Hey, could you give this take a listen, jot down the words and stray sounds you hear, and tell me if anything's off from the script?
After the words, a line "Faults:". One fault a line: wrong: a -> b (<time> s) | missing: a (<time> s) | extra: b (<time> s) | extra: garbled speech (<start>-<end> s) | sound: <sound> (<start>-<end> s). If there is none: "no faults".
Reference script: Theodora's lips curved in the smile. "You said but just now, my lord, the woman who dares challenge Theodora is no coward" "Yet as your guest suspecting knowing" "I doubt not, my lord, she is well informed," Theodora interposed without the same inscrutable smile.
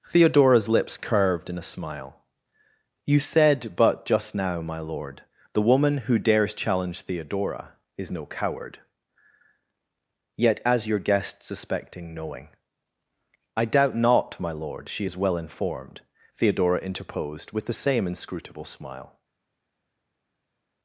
Theodora's lips curved in a smile. "You said but just now, my lord, the woman who dares challenge Theodora is no coward" "Yet as your guest suspecting knowing" "I doubt not, my lord, she is well informed," Theodora interposed with the same inscrutable smile.
Faults:
wrong: the -> a (1.6 s)
wrong: without -> with (17.5 s)